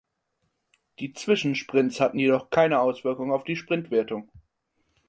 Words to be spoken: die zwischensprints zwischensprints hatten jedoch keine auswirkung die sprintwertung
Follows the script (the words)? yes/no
no